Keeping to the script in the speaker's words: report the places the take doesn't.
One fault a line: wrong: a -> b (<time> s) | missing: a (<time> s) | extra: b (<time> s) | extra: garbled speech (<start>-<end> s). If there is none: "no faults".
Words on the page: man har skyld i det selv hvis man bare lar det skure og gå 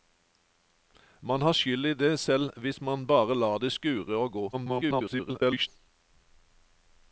extra: garbled speech (4.5-5.7 s)